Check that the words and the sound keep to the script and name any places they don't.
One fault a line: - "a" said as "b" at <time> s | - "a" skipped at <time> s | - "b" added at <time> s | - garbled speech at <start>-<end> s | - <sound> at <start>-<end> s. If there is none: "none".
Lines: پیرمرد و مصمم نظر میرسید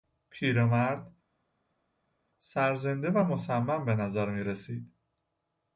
- "سرزنده" added at 2.4 s
- "به" added at 3.8 s